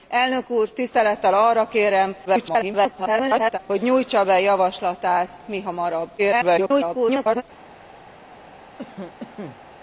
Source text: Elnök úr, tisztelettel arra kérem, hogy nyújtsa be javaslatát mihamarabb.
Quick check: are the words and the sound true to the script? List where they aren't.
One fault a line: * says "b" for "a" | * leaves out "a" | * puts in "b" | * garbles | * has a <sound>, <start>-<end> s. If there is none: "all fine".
* garbles
* garbles
* has a cough, 8.8-9.6 s